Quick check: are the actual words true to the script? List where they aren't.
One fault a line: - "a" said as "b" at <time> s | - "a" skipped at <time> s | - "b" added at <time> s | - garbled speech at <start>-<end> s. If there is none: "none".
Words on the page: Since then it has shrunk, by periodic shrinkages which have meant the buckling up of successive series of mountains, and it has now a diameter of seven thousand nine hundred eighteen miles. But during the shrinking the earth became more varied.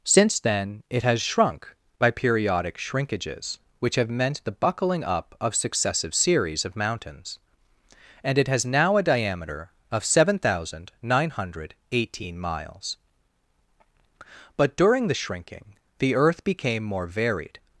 none